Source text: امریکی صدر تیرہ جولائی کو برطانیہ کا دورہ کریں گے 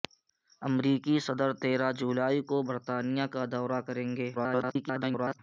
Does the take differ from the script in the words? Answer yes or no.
yes